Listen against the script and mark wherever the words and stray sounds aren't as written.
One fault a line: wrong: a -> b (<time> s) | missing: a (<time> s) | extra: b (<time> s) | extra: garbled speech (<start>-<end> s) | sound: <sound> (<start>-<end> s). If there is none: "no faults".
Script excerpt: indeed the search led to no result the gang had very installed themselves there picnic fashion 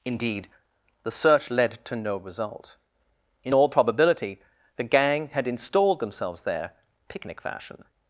extra: in all probability (3.4 s)
missing: very (5.5 s)